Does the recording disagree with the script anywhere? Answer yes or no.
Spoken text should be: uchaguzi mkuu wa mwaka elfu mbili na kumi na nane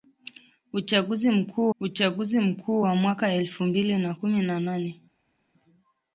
yes